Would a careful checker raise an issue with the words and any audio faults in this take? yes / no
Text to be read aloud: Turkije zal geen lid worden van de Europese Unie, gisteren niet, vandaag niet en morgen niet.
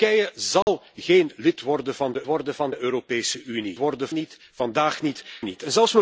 yes